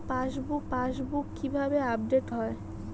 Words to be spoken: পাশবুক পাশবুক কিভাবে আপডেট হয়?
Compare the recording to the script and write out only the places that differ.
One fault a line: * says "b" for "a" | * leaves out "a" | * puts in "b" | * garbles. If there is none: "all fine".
all fine